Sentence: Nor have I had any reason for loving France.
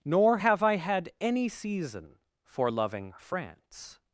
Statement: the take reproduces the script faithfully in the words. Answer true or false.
false